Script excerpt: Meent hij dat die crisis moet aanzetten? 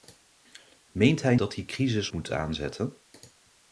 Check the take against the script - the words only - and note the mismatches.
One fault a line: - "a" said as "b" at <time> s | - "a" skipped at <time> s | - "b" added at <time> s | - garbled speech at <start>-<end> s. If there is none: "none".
none